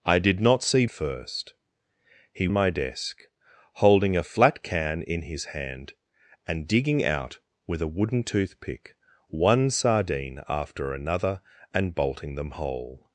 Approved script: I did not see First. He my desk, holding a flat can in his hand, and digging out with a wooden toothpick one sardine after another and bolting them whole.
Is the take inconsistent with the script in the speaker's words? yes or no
no